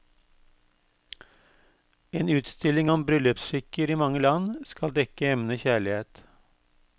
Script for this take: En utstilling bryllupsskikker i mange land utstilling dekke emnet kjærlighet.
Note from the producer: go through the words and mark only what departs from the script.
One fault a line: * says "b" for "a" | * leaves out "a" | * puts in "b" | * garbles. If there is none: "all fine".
* puts in "om"
* says "skal" for "utstilling"